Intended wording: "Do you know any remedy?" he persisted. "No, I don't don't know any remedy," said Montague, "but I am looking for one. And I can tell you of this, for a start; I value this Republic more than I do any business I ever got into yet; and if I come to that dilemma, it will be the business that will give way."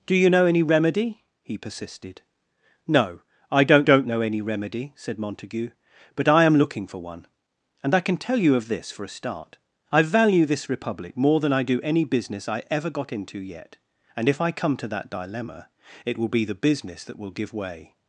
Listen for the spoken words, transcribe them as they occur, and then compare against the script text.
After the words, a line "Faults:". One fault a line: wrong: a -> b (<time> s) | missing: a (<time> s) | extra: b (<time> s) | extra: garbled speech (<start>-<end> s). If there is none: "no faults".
"Do you know any remedy?" he persisted. "No, I don't don't know any remedy," said Montague, "but I am looking for one. And I can tell you of this, for a start; I value this Republic more than I do any business I ever got into yet; and if I come to that dilemma, it will be the business that will give way."
Faults:
no faults